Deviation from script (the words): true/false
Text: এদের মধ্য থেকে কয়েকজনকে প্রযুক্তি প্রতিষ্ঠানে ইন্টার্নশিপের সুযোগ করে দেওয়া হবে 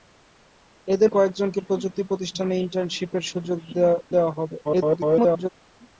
true